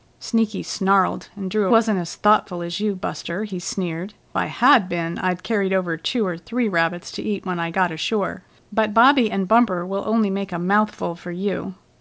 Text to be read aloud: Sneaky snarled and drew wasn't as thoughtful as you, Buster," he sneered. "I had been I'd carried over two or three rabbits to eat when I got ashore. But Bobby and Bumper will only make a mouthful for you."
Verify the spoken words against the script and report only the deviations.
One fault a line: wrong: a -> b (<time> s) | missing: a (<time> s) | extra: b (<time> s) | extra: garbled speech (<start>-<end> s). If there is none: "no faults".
no faults